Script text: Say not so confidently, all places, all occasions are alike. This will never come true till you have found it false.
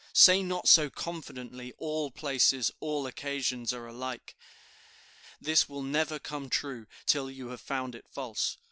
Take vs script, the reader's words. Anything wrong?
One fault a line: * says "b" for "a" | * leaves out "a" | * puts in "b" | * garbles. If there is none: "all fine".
all fine